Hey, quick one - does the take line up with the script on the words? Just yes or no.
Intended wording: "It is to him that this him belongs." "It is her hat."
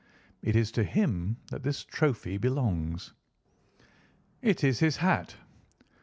no